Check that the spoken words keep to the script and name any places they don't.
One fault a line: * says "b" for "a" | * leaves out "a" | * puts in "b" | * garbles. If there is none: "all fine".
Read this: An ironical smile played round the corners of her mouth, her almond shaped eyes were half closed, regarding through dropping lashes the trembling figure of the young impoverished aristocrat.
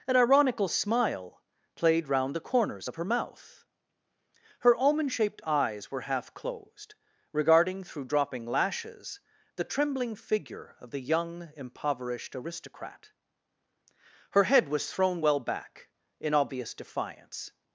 * puts in "Her head was thrown well back in obvious defiance"